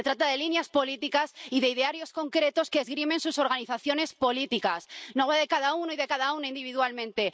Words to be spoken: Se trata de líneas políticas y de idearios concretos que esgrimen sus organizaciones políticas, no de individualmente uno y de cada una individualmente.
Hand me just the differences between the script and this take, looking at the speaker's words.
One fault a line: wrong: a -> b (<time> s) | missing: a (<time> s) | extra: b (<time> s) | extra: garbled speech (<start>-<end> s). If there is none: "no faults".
wrong: individualmente -> cada (5.5 s)